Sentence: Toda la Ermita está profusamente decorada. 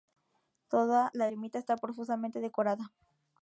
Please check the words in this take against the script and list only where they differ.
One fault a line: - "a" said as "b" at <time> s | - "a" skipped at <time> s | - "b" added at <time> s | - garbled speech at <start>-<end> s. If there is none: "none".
none